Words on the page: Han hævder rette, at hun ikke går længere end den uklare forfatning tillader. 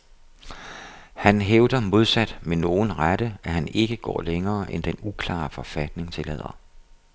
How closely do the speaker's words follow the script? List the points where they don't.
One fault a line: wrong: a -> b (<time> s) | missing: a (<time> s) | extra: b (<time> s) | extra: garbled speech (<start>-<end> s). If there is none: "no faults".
extra: modsat med nogen (1.8 s)
wrong: hun -> han (3.5 s)